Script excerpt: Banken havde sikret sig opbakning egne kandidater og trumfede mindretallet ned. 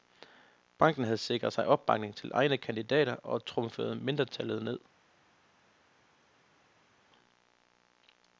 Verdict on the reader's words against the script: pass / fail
fail